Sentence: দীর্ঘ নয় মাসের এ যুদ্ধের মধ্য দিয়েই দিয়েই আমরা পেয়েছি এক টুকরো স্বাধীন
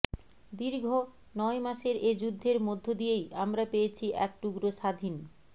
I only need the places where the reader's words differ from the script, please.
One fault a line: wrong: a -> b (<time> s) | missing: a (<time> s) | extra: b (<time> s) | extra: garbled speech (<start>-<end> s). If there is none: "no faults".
missing: দিয়েই (3.2 s)